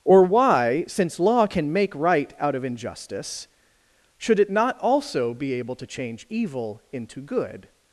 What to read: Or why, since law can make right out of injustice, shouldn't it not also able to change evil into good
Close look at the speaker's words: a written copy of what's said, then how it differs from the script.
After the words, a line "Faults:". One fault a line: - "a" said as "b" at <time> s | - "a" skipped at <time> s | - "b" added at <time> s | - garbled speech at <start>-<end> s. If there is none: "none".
Or why, since law can make right out of injustice, should it not also be able to change evil into good
Faults:
- "shouldn't" said as "should" at 4.2 s
- "be" added at 5.3 s